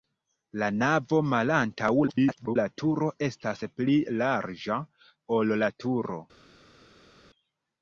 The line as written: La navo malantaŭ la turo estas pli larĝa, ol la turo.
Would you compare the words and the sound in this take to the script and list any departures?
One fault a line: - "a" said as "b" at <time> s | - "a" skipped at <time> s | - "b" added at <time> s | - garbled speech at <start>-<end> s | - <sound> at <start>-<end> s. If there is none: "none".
- garbled speech at 2.1-2.6 s